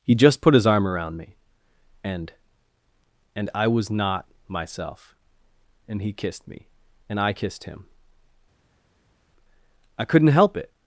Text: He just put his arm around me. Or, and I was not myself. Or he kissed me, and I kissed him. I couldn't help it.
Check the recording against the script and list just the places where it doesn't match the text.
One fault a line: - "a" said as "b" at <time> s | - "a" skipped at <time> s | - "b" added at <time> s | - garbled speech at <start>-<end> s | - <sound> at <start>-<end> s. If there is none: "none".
- "Or" said as "And" at 2.0 s
- "Or" said as "And" at 5.9 s